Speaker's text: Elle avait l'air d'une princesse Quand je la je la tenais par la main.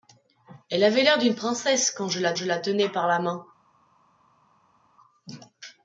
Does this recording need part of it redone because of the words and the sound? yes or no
no